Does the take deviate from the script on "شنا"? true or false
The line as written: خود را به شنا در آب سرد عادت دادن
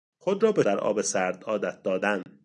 true